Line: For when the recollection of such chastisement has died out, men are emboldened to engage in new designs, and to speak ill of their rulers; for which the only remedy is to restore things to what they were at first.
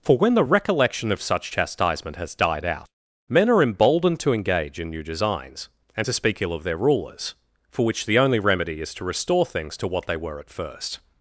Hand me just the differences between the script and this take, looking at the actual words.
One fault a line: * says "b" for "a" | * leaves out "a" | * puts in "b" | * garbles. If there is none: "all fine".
all fine